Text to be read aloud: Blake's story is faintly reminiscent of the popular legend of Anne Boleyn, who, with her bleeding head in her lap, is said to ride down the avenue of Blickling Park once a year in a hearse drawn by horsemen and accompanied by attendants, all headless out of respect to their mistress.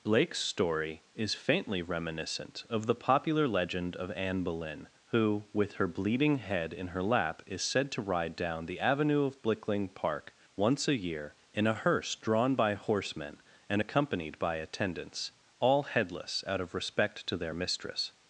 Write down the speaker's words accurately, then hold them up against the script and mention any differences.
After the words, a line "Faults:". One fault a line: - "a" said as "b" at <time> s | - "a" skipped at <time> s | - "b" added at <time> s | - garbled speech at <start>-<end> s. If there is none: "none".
Blake's story is faintly reminiscent of the popular legend of Anne Boleyn, who, with her bleeding head in her lap, is said to ride down the avenue of Blickling Park once a year in a hearse drawn by horsemen and accompanied by attendants, all headless out of respect to their mistress.
Faults:
none